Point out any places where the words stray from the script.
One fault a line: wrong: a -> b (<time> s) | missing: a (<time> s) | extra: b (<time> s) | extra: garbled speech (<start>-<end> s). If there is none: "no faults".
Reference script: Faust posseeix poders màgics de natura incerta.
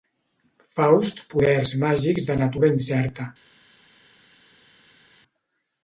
missing: posseeix (1.2 s)